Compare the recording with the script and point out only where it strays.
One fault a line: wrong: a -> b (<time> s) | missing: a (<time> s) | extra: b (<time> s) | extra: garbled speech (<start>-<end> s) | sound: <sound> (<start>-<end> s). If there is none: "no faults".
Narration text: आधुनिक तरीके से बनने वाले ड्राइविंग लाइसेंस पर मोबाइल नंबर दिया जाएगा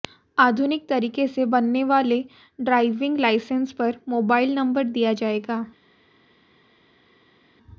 no faults